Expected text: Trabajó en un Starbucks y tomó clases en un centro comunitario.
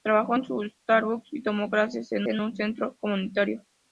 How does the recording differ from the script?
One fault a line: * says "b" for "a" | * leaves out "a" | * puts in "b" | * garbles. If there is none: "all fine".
* puts in "en"